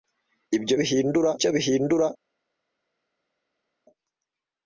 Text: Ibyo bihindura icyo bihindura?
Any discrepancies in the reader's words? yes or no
no